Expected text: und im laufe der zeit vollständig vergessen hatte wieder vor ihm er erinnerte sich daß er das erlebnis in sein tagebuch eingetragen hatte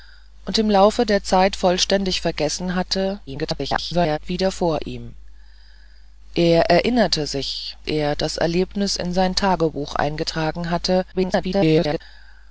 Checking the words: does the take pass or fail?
fail